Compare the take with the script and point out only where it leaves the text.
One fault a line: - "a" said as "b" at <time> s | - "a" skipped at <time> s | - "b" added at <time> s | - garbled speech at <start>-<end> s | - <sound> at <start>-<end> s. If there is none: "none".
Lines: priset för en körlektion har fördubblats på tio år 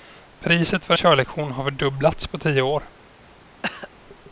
- "en" skipped at 0.9 s
- cough at 3.6-3.9 s